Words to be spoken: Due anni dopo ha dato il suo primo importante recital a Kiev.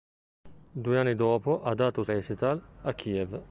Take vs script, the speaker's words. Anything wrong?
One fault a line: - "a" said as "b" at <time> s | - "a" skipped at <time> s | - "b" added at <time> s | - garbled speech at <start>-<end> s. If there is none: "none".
- "suo primo importante" skipped at 2.0 s